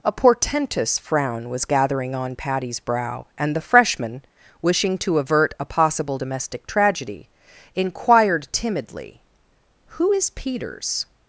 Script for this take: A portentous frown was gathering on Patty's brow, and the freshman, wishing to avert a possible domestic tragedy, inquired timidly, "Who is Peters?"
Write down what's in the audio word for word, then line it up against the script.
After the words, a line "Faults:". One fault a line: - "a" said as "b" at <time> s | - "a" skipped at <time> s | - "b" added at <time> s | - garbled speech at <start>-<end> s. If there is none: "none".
A portentous frown was gathering on Patty's brow, and the freshman, wishing to avert a possible domestic tragedy, inquired timidly, "Who is Peters?"
Faults:
none